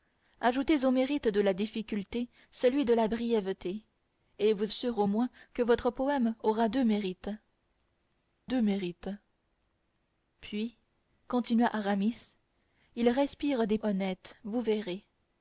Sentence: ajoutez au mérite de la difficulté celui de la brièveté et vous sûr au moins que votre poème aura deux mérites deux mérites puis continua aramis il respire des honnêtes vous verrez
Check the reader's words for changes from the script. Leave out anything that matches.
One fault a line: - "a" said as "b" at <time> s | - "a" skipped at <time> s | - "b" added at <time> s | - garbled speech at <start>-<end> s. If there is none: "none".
none